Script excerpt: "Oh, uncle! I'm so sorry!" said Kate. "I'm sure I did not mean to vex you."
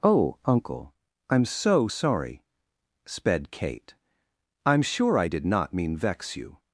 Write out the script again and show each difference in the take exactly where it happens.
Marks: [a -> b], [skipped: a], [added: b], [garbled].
"Oh, uncle! I'm so sorry!" [said -> sped] Kate. "I'm sure I did not mean [skipped: to] vex you."